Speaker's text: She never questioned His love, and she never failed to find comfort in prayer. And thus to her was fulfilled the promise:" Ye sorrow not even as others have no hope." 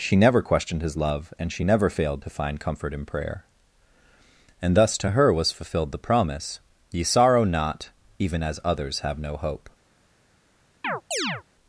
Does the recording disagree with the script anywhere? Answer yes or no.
no